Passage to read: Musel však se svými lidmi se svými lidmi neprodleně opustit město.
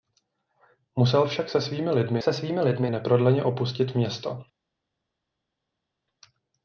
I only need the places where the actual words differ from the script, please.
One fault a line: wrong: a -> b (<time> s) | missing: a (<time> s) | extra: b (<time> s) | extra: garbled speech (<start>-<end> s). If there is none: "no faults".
no faults